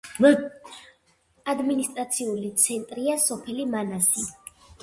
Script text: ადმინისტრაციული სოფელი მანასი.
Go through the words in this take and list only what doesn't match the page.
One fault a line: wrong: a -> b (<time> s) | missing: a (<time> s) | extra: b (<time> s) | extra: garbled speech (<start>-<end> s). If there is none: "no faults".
extra: ცენტრია (2.6 s)